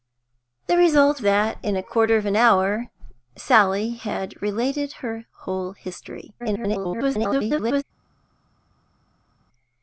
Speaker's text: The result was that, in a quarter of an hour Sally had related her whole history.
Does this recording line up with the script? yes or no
no